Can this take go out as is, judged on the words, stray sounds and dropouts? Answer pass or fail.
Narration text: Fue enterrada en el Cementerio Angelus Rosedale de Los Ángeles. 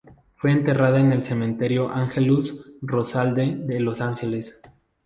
pass